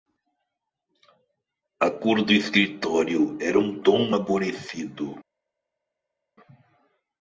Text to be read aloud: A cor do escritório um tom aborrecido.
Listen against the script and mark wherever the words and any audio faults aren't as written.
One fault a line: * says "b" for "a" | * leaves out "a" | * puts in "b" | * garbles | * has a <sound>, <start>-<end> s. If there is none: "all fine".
* puts in "era"